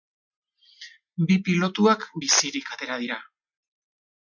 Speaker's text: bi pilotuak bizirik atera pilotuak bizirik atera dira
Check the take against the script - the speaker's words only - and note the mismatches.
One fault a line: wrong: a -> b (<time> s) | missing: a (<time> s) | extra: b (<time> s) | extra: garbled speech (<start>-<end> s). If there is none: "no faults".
missing: pilotuak bizirik atera (3.0 s)